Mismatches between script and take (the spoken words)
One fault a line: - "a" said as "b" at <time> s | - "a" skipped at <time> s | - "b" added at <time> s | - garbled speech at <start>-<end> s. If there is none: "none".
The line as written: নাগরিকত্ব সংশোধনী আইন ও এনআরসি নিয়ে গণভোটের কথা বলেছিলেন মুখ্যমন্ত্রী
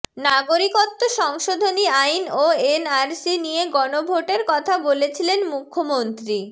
none